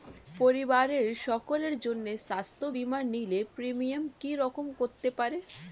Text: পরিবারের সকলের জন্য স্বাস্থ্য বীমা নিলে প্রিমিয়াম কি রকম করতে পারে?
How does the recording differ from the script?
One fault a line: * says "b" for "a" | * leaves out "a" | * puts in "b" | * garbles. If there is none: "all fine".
all fine